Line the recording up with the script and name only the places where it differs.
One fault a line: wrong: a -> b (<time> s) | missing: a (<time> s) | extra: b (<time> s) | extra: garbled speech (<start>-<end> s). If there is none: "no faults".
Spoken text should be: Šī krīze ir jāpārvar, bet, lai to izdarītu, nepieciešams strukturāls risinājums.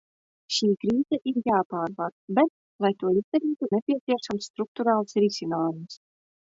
no faults